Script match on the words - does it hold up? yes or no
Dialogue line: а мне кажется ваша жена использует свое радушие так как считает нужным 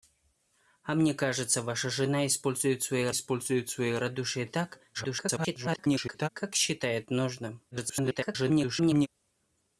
no